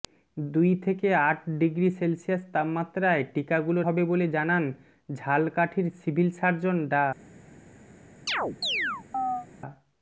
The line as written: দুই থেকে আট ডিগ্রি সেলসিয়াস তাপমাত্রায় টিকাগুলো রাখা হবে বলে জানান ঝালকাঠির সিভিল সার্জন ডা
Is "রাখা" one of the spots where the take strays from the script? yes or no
yes